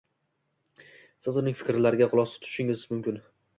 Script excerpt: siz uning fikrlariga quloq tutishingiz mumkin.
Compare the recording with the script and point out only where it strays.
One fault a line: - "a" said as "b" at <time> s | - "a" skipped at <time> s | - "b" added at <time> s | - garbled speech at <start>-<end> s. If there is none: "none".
none